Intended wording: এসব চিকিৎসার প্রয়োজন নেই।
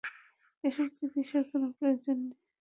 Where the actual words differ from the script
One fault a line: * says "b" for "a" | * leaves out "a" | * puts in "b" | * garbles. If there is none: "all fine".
* puts in "কোনো"